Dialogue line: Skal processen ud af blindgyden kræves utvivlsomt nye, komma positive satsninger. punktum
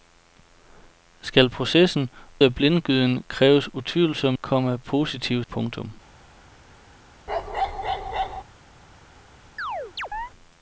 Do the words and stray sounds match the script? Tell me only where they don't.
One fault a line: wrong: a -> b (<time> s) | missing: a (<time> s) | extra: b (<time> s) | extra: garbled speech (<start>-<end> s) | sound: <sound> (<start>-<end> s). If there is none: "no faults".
missing: ud (2.1 s)
missing: nye (4.4 s)
missing: satsninger (5.4 s)
sound: bark (7.3-8.4 s)
sound: chirp (9.6-10.3 s)